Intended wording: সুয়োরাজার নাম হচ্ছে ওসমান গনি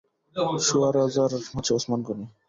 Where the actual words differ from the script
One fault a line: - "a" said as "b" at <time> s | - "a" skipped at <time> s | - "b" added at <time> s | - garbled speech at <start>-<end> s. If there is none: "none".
- "নাম" skipped at 1.3 s